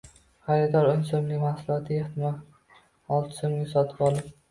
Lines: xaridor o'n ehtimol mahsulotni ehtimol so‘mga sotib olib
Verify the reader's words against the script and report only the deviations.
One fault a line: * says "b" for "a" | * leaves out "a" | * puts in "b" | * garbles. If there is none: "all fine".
* says "so‘mlik" for "ehtimol"
* puts in "olti"